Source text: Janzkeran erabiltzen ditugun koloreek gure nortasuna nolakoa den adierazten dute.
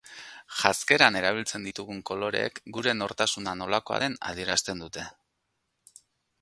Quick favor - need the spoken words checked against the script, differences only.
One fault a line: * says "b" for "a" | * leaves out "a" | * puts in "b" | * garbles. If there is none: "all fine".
all fine